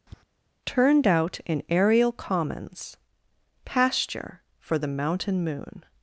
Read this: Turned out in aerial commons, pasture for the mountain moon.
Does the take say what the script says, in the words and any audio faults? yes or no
no